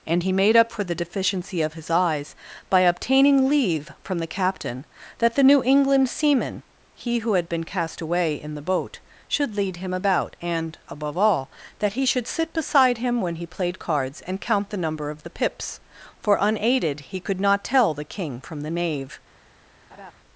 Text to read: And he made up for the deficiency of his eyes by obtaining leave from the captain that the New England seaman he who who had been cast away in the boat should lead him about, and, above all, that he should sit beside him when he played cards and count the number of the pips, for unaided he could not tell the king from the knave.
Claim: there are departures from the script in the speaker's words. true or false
true